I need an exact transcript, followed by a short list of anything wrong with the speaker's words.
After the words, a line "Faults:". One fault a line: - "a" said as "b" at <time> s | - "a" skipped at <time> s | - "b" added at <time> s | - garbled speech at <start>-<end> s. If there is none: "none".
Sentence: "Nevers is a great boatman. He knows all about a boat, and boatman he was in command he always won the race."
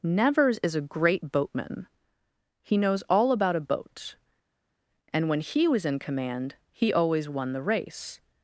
"Nevers is a great boatman. He knows all about a boat, and when he was in command he always won the race."
Faults:
- "boatman" said as "when" at 5.3 s